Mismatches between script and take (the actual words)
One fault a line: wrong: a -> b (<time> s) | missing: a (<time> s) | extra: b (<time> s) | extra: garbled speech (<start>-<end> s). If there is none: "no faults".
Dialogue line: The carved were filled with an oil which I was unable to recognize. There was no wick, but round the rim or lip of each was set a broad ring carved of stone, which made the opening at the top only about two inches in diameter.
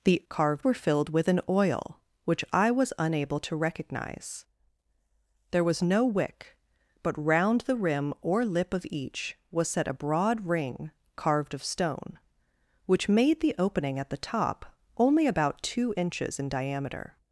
no faults